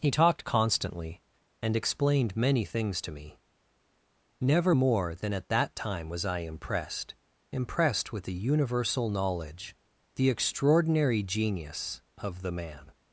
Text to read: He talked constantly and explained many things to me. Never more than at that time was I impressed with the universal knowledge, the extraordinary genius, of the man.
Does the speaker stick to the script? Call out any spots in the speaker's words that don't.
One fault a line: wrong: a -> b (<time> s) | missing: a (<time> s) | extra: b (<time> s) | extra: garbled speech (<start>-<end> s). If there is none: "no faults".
extra: impressed (7.5 s)